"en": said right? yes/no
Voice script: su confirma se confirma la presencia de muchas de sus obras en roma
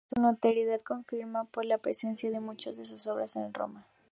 yes